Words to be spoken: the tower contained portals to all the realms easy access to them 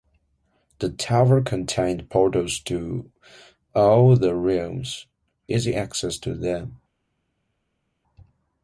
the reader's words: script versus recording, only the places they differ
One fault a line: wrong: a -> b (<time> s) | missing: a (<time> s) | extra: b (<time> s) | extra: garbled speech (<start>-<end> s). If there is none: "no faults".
no faults